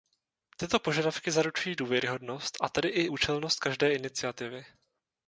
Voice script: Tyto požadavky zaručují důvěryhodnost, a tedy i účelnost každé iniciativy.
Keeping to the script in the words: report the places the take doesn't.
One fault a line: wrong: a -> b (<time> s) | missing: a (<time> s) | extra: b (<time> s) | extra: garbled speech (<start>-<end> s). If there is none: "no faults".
no faults